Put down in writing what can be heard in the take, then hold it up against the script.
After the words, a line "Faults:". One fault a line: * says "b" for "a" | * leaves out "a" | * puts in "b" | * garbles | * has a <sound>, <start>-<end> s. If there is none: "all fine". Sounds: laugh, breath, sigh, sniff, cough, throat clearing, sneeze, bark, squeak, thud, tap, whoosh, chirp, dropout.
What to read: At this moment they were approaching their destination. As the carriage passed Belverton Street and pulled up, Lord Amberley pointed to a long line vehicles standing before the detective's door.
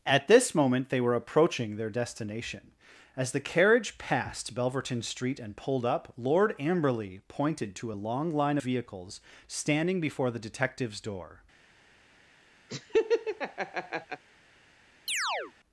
At this moment they were approaching their destination. As the carriage passed Belverton Street and pulled up, Lord Amberley pointed to a long line vehicles standing before the detective's door.
Faults:
* has a laugh, 12.7-14.2 s
* has a chirp, 15.1-15.5 s